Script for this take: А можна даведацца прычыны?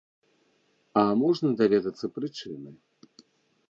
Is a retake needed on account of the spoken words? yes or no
no